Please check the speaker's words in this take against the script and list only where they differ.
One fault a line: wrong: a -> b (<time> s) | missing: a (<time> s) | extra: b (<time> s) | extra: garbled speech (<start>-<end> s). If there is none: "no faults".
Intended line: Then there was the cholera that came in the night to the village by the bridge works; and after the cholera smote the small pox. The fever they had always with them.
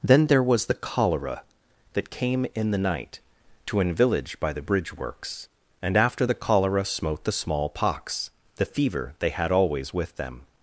wrong: the -> an (3.8 s)